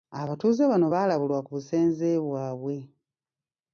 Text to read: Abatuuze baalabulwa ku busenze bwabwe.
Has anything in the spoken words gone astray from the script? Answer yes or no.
yes